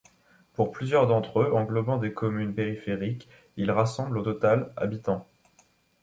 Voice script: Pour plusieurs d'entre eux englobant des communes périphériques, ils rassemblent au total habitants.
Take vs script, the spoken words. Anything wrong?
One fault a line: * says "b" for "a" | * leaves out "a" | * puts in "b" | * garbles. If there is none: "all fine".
all fine